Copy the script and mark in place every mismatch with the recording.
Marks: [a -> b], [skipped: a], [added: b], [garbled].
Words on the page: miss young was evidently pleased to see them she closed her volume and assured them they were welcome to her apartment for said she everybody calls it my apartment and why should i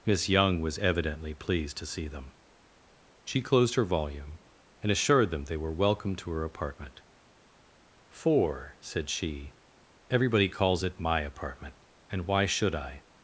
miss young was evidently pleased to see them she closed her volume and assured them they were welcome to her apartment for said she everybody calls it my apartment and why should i